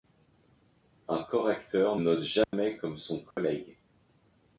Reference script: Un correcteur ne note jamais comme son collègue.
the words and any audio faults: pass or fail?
fail